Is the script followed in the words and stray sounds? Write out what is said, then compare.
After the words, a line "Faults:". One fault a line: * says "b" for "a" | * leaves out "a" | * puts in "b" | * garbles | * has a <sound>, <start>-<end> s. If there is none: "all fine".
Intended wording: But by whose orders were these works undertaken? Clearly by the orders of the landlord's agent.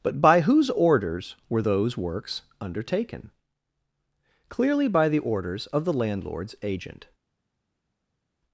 But by whose orders were those works undertaken? Clearly by the orders of the landlord's agent.
Faults:
* says "those" for "these"